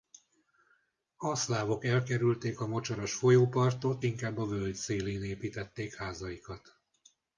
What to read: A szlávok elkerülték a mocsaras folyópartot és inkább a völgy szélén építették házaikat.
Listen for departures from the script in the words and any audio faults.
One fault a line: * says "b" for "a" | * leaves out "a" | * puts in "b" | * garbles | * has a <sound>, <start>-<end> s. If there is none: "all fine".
* leaves out "és"